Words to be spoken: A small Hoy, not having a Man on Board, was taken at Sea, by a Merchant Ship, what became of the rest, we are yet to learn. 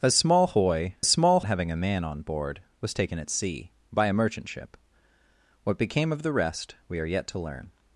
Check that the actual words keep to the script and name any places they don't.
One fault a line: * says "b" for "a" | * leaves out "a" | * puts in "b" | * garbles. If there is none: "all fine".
* says "small" for "not"